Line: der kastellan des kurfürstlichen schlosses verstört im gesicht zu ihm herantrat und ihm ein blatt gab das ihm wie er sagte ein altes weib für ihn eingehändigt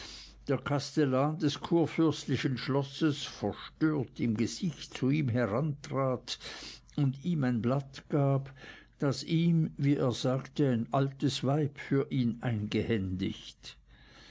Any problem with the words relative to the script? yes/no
no